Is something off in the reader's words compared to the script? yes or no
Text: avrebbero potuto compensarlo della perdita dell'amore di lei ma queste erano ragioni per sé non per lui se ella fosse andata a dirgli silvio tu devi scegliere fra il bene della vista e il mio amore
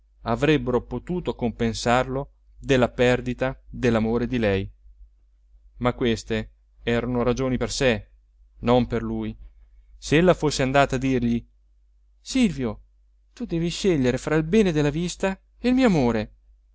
no